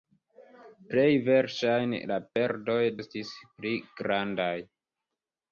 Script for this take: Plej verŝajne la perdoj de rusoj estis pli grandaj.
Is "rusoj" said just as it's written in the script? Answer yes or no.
no